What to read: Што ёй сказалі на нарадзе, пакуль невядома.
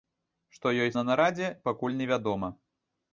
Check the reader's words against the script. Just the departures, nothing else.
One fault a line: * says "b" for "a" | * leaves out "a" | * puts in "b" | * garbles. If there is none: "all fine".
* leaves out "сказалі"